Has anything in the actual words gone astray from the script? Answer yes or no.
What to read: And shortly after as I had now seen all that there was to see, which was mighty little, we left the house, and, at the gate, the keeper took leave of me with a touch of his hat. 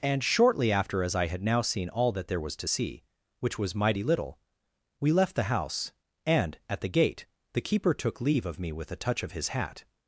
no